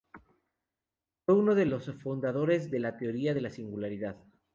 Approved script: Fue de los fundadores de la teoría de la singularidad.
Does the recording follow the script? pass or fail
fail